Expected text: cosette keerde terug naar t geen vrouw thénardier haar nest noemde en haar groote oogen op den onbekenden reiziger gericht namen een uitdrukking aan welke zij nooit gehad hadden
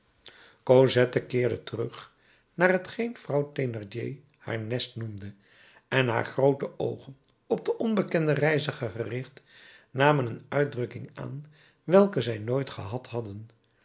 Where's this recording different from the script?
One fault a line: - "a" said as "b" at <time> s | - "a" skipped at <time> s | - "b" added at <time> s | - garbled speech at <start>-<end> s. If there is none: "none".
none